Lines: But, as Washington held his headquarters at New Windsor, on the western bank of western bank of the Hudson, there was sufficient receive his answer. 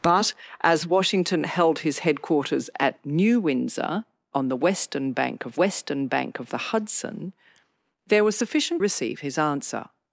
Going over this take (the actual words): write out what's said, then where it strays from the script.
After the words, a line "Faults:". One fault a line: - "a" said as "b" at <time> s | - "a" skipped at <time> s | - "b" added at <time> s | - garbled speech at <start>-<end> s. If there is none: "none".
But, as Washington held his headquarters at New Windsor, on the western bank of western bank of the Hudson, there was sufficient receive his answer.
Faults:
none